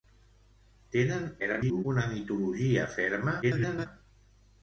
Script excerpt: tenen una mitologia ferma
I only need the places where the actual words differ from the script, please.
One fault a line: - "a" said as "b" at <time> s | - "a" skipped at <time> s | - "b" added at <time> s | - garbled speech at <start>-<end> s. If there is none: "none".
- garbled speech at 1.4-1.8 s
- garbled speech at 3.4-3.9 s